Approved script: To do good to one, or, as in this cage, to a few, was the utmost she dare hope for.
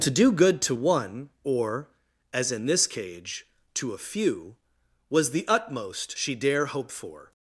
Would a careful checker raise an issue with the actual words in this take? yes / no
no